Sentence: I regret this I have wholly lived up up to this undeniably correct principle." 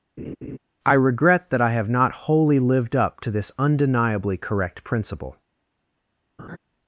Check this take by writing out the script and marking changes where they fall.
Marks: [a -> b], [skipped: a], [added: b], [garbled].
I regret [this -> that] I have [added: not] wholly lived up [skipped: up] to this undeniably correct principle."